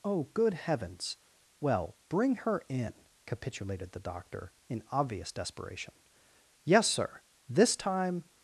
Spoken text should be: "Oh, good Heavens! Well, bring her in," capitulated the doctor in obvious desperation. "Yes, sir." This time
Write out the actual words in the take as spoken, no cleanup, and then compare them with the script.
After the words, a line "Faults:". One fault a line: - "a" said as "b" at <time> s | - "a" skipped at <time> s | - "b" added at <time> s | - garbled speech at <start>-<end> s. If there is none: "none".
"Oh, good Heavens! Well, bring her in," capitulated the doctor in obvious desperation. "Yes, sir." This time
Faults:
none